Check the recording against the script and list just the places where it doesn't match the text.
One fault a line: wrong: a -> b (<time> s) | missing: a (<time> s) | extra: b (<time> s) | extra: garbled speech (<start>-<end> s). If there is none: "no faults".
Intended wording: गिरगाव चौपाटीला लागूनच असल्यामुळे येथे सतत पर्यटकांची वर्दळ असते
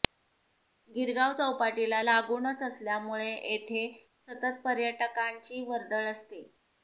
no faults